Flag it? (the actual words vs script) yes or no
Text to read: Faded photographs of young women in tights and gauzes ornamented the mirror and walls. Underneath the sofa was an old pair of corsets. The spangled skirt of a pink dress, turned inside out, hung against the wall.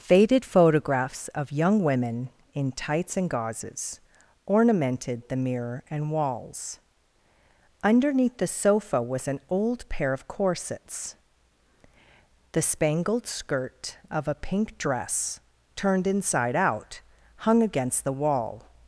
no